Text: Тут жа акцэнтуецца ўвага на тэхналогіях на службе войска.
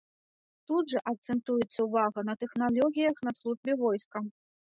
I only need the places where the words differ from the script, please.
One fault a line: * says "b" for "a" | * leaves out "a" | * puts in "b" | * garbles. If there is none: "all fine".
all fine